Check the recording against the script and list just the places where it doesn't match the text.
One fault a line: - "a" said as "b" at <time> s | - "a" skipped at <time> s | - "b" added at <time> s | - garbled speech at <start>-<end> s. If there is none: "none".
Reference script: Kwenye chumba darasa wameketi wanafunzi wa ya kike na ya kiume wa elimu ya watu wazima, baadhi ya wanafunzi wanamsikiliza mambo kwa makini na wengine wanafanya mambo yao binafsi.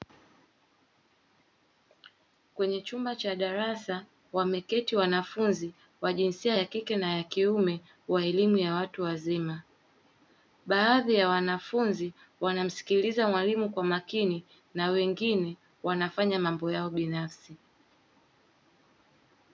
- "cha" added at 3.1 s
- "jinsia" added at 6.1 s
- "mambo" said as "mwalimu" at 13.3 s